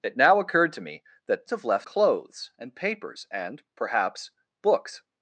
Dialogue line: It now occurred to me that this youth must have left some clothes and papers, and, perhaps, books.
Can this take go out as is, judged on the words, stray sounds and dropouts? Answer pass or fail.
fail